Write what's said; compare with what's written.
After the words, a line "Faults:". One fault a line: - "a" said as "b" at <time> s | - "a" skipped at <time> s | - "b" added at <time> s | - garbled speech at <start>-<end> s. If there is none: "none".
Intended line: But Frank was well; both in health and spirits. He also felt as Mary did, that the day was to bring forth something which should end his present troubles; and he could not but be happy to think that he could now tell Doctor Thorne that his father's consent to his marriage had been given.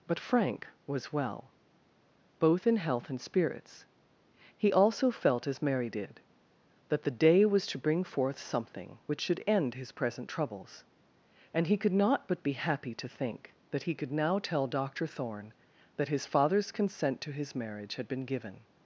But Frank was well; both in health and spirits. He also felt as Mary did, that the day was to bring forth something which should end his present troubles; and he could not but be happy to think that he could now tell Doctor Thorne that his father's consent to his marriage had been given.
Faults:
none